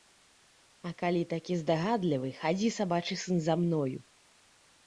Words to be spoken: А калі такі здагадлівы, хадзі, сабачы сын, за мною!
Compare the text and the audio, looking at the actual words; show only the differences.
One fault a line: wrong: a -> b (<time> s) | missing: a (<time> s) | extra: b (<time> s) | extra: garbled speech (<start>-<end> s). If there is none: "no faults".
no faults